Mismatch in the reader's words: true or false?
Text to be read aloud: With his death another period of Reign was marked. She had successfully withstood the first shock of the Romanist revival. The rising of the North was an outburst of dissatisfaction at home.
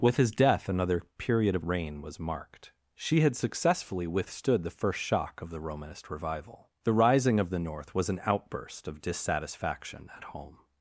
false